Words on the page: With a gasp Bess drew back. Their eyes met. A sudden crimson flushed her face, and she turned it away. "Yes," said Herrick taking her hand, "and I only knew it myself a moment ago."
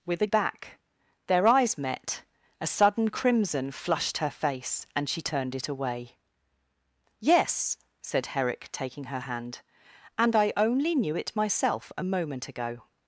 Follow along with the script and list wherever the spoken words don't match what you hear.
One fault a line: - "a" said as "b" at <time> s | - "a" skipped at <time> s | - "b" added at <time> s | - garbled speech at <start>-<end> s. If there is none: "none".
- "gasp Bess drew" skipped at 0.3 s